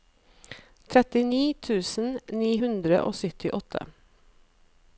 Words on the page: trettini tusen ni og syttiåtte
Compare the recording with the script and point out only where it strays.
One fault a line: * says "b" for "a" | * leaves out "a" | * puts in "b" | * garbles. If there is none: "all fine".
* puts in "hundre"